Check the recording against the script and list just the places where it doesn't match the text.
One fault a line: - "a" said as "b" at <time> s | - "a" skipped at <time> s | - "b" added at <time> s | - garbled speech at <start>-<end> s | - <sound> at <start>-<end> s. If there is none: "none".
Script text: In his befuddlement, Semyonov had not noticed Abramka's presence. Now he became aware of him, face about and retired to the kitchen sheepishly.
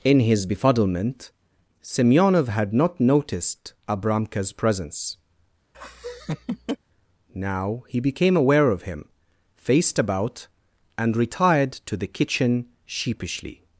- laugh at 5.7-6.8 s
- "face" said as "faced" at 9.6 s